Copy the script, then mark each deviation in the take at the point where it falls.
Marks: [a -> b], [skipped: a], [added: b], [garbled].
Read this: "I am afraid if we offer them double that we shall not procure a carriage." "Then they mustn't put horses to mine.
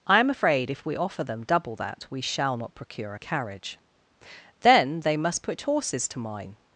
"I am afraid if we offer them double that we shall not procure a carriage." "Then they [mustn't -> must] put horses to mine.